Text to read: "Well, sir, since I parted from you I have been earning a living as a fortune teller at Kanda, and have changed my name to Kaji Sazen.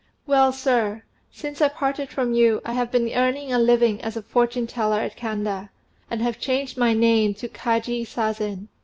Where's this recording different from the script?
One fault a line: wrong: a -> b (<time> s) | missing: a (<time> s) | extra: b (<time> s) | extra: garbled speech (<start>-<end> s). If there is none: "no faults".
no faults